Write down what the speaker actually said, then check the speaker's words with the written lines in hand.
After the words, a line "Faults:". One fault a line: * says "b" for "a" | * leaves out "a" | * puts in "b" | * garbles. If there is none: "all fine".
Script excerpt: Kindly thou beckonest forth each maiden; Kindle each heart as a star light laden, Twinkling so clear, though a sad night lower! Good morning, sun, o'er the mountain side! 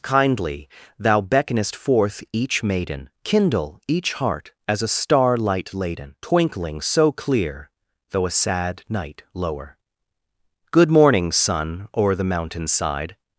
Kindly thou beckonest forth each maiden; Kindle each heart as a star light laden, Twinkling so clear, though a sad night lower! Good morning, sun, o'er the mountain side!
Faults:
all fine